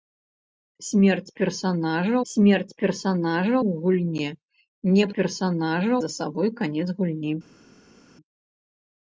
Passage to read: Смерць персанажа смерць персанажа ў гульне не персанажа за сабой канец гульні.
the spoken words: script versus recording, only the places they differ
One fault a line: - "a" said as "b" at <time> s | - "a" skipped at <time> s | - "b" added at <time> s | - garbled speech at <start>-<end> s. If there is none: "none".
none